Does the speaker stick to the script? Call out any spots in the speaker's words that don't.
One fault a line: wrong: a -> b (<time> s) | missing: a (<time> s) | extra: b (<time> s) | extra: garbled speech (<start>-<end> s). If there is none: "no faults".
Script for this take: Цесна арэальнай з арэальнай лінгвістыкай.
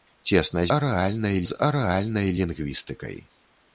no faults